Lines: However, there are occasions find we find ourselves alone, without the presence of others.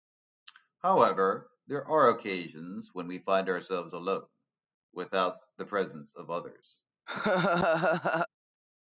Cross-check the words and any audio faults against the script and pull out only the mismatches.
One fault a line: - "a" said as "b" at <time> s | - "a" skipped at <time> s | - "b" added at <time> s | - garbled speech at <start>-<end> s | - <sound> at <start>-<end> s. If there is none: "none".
- "find" said as "when" at 2.9 s
- laugh at 7.1-8.3 s